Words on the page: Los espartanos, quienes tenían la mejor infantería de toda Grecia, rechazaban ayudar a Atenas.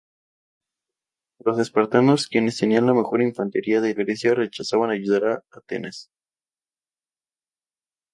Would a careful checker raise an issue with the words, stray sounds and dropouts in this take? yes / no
yes